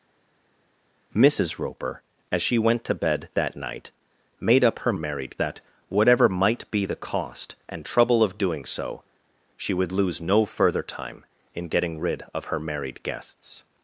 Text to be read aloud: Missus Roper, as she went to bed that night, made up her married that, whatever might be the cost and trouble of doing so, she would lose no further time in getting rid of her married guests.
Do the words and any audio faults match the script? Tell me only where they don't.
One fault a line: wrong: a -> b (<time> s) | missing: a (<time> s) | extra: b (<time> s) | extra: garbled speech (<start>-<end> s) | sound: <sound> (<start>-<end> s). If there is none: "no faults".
no faults